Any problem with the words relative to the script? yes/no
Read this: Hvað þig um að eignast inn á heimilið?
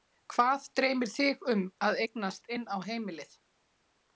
yes